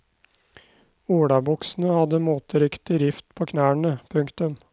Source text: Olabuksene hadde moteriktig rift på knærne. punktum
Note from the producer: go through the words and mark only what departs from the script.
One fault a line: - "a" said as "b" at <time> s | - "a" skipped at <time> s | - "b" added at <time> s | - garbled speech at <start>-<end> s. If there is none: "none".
none